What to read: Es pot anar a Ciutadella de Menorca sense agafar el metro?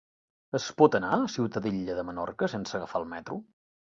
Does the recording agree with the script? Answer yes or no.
yes